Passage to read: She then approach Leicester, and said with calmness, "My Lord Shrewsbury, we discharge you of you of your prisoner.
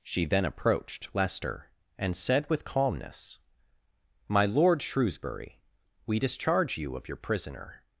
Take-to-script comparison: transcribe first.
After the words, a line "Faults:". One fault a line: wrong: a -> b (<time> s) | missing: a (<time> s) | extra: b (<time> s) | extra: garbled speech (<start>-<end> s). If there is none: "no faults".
She then approached Leicester, and said with calmness, "My Lord Shrewsbury, we discharge you of your prisoner.
Faults:
wrong: approach -> approached (0.5 s)
missing: you of (7.1 s)